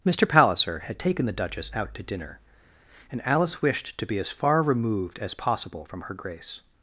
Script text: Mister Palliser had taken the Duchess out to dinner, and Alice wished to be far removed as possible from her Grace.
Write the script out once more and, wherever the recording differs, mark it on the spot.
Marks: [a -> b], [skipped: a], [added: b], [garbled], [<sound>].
Mister Palliser had taken the Duchess out to dinner, and Alice wished to be [added: as] far removed as possible from her Grace.